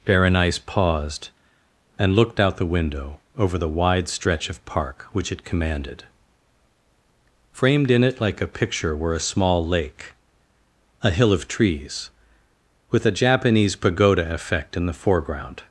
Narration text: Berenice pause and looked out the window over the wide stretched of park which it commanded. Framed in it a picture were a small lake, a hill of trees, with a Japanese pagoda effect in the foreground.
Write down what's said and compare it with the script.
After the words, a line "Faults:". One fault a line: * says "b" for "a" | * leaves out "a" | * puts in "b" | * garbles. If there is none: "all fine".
Berenice paused and looked out the window over the wide stretch of park which it commanded. Framed in it like a picture were a small lake, a hill of trees, with a Japanese pagoda effect in the foreground.
Faults:
* says "paused" for "pause"
* says "stretch" for "stretched"
* puts in "like"